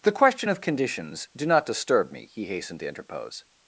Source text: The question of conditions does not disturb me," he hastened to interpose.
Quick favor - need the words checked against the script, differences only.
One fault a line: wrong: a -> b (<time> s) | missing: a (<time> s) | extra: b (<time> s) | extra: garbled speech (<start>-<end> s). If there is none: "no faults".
wrong: does -> do (1.3 s)